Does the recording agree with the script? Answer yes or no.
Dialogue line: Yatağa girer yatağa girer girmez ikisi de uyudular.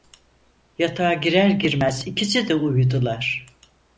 no